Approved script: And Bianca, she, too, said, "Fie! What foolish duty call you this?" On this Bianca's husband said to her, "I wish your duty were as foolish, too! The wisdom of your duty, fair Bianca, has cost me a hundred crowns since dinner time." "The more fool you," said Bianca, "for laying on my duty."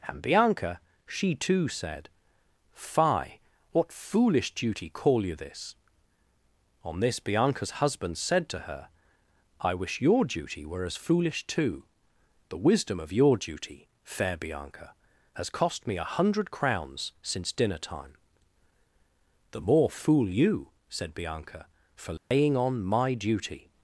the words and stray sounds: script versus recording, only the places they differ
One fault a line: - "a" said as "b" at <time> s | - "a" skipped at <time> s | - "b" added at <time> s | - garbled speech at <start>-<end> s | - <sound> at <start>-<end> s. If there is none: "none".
- dropout at 22.2-22.3 s